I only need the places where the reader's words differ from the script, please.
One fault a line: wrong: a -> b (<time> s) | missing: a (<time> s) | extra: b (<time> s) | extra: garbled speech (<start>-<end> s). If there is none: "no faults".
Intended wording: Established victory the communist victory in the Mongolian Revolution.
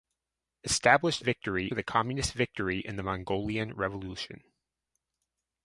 no faults